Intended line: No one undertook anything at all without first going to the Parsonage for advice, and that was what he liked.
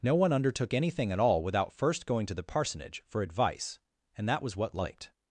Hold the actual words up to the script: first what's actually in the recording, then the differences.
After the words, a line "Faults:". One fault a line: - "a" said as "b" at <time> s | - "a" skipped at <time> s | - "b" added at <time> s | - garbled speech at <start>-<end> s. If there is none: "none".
No one undertook anything at all without first going to the Parsonage for advice, and that was what liked.
Faults:
- "he" skipped at 4.7 s